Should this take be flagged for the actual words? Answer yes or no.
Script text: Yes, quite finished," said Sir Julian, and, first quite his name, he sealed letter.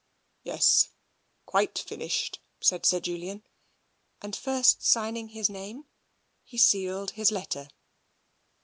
yes